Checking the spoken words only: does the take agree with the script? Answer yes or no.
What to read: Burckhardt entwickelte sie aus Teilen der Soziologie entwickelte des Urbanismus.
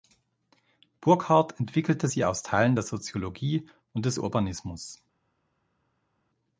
no